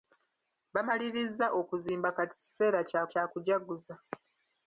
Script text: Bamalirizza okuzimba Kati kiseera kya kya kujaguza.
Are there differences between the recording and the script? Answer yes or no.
no